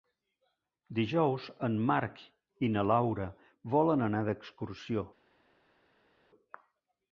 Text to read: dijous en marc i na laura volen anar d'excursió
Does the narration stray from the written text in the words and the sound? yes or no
no